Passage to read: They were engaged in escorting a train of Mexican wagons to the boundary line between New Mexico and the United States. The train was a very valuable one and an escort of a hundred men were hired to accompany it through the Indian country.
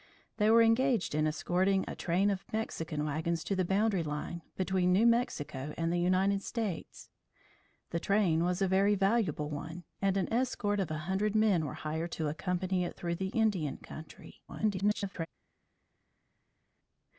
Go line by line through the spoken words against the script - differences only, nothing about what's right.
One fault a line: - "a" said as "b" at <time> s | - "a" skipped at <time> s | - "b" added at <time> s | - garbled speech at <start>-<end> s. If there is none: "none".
- garbled speech at 14.5-15.3 s